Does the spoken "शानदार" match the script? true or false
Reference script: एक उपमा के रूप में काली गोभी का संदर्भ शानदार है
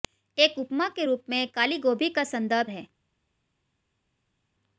false